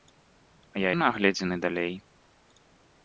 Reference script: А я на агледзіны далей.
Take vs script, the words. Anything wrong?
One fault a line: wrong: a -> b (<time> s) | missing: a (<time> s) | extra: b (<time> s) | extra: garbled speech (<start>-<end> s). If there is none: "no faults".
no faults